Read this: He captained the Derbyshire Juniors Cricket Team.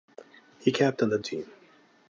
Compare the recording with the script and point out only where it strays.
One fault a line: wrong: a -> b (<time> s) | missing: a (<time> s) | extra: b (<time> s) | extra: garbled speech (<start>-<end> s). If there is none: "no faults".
missing: Derbyshire Juniors Cricket (1.2 s)